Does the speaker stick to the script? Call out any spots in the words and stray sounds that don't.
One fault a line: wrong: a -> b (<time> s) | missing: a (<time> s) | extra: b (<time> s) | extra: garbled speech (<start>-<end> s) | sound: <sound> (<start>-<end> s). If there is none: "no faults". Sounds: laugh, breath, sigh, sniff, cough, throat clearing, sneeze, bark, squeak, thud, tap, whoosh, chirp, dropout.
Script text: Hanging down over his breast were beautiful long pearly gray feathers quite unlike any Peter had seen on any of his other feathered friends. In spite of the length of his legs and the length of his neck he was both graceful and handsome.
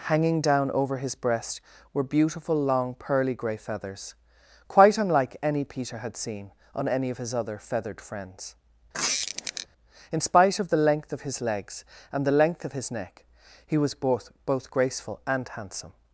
sound: squeak (8.9-9.7 s)
extra: both (14.4 s)